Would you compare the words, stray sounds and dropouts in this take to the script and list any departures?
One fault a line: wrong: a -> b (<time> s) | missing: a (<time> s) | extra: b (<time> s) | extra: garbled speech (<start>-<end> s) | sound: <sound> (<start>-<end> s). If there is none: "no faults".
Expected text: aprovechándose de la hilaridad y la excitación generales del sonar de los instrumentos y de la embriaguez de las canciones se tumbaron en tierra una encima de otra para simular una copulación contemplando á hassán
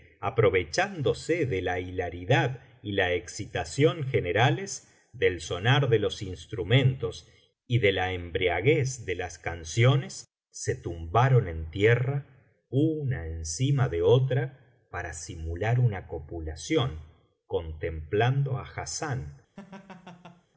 sound: laugh (19.6-20.5 s)